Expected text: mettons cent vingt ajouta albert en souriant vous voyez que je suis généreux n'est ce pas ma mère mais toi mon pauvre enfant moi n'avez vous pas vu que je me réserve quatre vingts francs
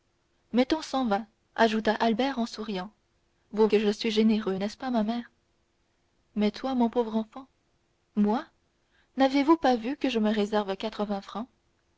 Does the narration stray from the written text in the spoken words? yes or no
yes